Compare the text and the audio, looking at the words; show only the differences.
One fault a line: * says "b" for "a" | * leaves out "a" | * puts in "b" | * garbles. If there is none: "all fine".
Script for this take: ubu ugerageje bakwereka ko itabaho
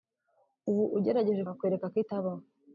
all fine